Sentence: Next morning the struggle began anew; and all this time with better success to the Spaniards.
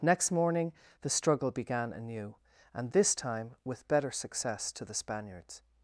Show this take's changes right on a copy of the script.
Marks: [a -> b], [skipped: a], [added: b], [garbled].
Next morning the struggle began anew; and [skipped: all] this time with better success to the Spaniards.